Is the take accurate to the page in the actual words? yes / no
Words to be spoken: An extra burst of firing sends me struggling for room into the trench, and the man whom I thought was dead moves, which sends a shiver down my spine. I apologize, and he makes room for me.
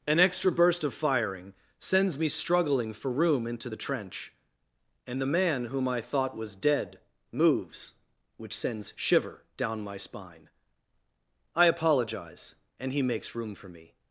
no